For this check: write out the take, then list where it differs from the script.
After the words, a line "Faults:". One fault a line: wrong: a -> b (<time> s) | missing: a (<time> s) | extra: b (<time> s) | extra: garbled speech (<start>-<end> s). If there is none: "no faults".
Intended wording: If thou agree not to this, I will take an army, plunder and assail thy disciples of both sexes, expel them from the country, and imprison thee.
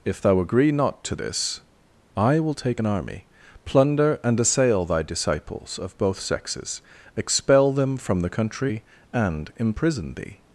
If thou agree not to this, I will take an army, plunder and assail thy disciples of both sexes, expel them from the country, and imprison thee.
Faults:
no faults